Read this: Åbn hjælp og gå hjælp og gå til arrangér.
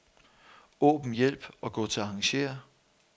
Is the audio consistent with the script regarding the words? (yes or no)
no